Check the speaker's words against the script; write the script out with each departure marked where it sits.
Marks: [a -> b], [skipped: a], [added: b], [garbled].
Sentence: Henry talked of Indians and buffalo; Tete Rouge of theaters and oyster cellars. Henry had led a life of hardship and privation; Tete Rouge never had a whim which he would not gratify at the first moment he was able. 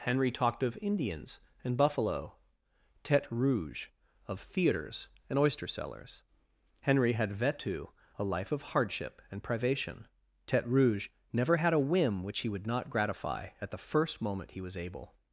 Henry talked of Indians and buffalo; Tete Rouge of theaters and oyster cellars. Henry had [led -> vetu] a life of hardship and privation; Tete Rouge never had a whim which he would not gratify at the first moment he was able.